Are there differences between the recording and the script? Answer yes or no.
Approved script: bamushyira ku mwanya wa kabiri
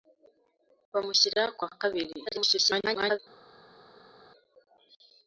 yes